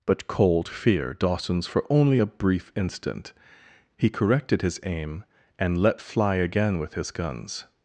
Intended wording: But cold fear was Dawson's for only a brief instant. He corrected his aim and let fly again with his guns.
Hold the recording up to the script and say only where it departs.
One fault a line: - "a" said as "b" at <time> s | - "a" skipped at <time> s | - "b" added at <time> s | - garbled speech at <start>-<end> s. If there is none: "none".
- "was" skipped at 1.1 s